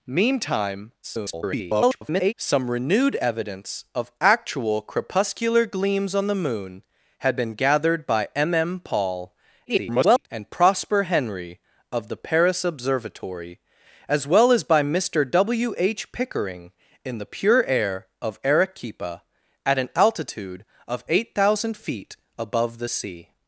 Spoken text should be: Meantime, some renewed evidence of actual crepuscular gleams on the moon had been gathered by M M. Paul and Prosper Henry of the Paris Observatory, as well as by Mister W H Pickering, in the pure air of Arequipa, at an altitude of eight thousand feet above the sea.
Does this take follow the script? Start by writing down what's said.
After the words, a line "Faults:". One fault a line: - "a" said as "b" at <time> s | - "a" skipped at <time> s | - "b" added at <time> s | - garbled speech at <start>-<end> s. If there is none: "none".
Meantime, [garbled] some renewed evidence of actual crepuscular gleams on the moon had been gathered by M M. Paul [garbled] and Prosper Henry of the Paris Observatory, as well as by Mister W H Pickering, in the pure air of Arequipa, at an altitude of eight thousand feet above the sea.
Faults:
- garbled speech at 1.0-2.3 s
- garbled speech at 9.7-10.3 s